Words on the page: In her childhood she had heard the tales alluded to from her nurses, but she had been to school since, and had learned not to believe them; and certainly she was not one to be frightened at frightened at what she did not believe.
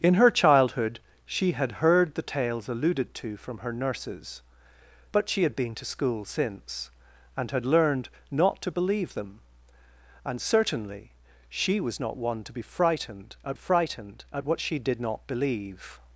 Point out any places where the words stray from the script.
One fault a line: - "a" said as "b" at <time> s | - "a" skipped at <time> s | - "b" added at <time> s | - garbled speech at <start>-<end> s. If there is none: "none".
none